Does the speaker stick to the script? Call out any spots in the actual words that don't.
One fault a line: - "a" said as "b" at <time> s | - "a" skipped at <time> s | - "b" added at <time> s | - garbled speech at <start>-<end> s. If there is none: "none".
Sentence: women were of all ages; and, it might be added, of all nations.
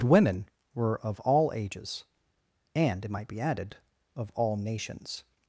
none